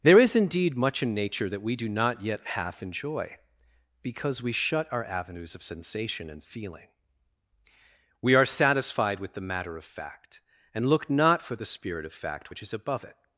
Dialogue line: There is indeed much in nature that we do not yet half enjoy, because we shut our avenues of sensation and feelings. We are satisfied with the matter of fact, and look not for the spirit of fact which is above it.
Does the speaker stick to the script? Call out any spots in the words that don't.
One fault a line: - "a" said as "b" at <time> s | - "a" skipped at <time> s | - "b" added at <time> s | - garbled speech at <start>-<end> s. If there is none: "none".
- "feelings" said as "feeling" at 6.4 s